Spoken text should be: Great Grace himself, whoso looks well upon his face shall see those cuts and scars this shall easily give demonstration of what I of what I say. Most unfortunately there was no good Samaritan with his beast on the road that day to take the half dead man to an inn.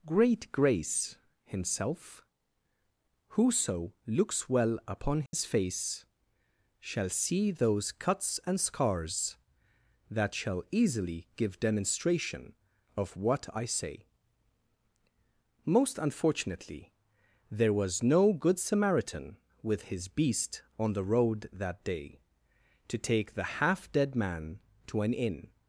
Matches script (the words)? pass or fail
fail